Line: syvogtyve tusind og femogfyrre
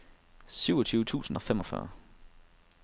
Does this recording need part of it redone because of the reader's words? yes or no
no